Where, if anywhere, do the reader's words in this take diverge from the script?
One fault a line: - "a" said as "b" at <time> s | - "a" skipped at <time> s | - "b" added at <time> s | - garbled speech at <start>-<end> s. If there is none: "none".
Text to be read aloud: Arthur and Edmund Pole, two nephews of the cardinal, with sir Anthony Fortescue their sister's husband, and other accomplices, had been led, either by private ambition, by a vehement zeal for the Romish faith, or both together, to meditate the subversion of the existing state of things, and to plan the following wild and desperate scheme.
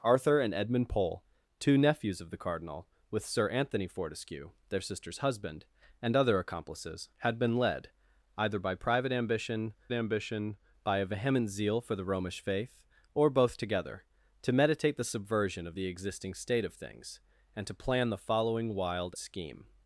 - "ambition" added at 9.9 s
- "and desperate" skipped at 19.1 s